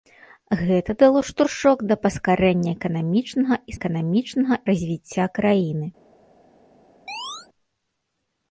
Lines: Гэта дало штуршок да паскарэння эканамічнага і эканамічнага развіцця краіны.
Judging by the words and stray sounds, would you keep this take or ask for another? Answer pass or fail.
fail